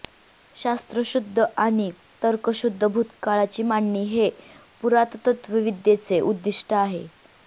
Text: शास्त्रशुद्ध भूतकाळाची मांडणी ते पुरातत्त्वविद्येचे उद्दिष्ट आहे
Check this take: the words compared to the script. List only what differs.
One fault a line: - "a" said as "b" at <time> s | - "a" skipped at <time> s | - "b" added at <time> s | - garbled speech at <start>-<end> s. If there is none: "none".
- "आणि तर्कशुद्ध" added at 1.6 s
- "ते" said as "हे" at 4.0 s